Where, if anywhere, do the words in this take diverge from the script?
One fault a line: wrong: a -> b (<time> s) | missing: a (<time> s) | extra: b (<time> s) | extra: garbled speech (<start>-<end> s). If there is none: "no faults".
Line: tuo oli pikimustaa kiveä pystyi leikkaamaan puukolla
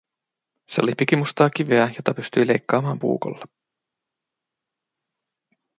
wrong: tuo -> se (0.7 s)
extra: jota (2.0 s)